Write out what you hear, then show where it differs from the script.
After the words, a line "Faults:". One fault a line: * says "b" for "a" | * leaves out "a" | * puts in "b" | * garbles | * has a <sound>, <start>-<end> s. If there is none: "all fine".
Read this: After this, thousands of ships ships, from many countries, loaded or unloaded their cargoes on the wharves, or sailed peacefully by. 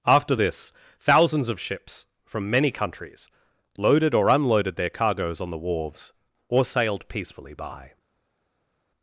After this, thousands of ships, from many countries, loaded or unloaded their cargoes on the wharves, or sailed peacefully by.
Faults:
* leaves out "ships"